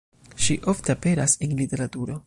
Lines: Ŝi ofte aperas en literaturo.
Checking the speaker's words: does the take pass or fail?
pass